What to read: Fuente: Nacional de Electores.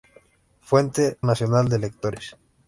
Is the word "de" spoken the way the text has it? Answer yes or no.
yes